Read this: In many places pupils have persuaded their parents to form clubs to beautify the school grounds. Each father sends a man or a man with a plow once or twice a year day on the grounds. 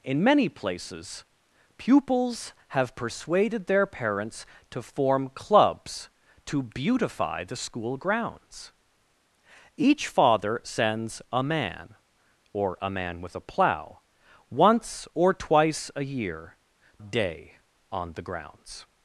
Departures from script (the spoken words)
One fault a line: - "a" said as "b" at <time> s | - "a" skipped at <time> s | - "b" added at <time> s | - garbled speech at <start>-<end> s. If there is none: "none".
none